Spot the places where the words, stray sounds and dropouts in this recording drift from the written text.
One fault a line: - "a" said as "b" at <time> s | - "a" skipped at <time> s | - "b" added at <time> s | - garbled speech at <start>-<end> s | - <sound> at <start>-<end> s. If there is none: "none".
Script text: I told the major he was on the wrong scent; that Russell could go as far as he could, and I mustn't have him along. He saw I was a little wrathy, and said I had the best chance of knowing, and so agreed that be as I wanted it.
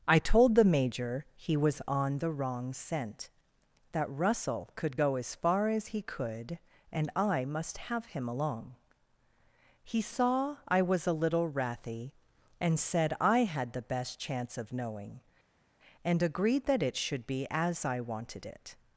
- "mustn't" said as "must" at 7.4 s
- "so" skipped at 16.2 s
- "it should" added at 16.8 s